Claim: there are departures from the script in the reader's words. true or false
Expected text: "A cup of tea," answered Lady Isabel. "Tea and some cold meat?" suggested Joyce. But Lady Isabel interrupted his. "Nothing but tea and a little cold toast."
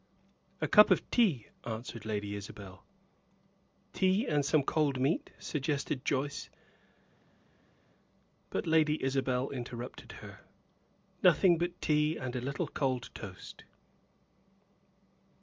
true